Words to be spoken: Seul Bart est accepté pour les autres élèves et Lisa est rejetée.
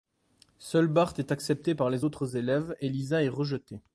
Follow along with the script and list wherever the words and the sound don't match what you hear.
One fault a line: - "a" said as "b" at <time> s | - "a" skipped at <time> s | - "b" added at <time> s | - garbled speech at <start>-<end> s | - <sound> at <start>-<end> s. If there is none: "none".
- "pour" said as "par" at 1.7 s